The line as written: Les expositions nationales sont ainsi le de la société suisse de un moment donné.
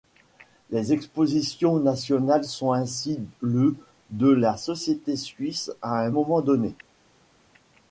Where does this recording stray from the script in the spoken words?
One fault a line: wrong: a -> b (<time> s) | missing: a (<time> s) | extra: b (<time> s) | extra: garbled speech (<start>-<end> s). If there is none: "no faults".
wrong: de -> à (5.8 s)